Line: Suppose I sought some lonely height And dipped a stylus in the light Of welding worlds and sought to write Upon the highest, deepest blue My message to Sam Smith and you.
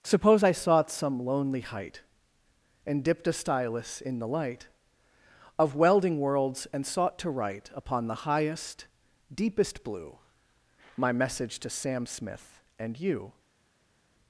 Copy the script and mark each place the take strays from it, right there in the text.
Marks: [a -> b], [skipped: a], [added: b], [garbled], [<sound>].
Suppose I sought some lonely height And dipped a stylus in the light Of welding worlds and sought to write Upon the highest, deepest blue My message to Sam Smith and you.